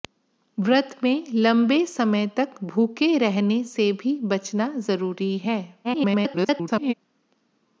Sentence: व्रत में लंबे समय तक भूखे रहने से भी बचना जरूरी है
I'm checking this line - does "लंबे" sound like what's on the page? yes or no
yes